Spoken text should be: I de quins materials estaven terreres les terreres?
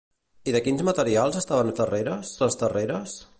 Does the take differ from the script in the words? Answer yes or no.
no